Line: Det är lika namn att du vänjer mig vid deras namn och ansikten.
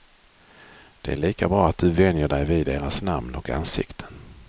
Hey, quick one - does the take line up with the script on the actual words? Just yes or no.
no